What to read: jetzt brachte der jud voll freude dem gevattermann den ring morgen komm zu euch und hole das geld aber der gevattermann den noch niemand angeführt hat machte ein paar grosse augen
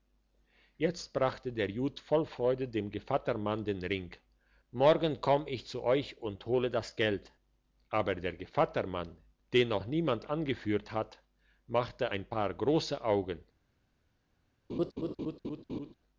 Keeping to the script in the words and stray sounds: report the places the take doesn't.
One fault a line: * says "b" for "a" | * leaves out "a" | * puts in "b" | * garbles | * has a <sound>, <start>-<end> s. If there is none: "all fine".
* puts in "ich"
* has a laugh, 14.7-15.9 s